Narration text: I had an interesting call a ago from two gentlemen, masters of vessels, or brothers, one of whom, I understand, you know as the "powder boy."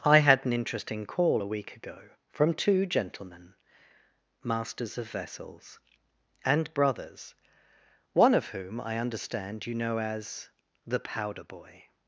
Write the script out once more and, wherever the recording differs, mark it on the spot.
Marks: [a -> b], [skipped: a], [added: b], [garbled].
I had an interesting call a [added: week] ago from two gentlemen, masters of vessels, [or -> and] brothers, one of whom, I understand, you know as the "powder boy."